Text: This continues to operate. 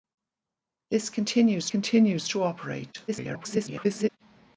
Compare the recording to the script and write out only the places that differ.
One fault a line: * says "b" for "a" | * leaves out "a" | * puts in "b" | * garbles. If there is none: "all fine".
* puts in "continues"
* garbles